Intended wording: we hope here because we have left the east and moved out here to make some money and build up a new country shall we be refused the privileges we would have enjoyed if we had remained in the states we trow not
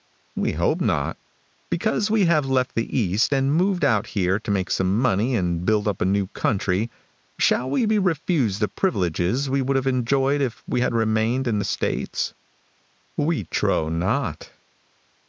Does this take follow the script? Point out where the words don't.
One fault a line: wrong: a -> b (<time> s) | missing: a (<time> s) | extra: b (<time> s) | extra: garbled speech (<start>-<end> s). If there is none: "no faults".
wrong: here -> not (0.8 s)